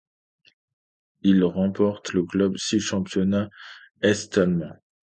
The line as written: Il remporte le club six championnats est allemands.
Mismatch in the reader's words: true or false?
false